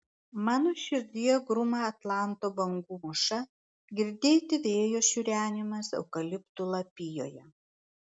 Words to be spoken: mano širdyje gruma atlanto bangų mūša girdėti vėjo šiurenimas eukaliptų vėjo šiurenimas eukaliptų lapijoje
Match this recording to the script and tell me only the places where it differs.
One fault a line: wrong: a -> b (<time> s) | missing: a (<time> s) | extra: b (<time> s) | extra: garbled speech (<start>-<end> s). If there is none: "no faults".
missing: vėjo šiurenimas eukaliptų (6.7 s)